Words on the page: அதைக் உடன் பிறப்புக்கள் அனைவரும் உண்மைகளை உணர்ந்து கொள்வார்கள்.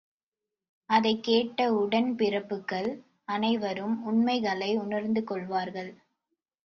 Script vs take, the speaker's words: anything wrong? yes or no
yes